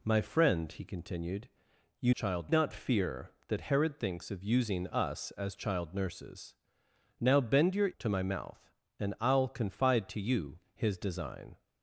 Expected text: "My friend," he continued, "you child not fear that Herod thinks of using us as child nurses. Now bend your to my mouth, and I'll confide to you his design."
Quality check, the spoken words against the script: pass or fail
pass